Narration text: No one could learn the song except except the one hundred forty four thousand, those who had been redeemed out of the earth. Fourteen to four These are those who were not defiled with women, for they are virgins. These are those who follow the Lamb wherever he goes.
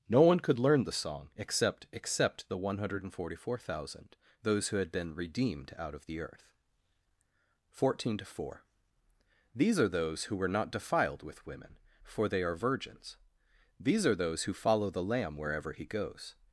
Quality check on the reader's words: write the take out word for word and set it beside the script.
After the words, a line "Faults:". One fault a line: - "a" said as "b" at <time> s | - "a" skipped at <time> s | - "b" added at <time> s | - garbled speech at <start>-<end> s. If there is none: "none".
No one could learn the song except except the one hundred forty four thousand, those who had been redeemed out of the earth. Fourteen to four These are those who were not defiled with women, for they are virgins. These are those who follow the Lamb wherever he goes.
Faults:
none